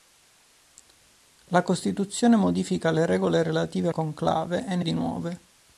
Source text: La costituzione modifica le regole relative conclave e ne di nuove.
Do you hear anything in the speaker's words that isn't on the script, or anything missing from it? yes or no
no